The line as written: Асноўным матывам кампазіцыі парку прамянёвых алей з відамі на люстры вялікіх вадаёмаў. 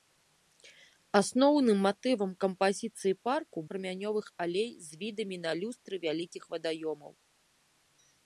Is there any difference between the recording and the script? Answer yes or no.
no